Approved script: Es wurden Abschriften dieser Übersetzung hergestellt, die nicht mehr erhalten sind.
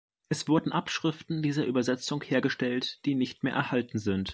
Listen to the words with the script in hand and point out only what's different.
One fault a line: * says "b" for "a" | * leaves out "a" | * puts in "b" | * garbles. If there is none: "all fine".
all fine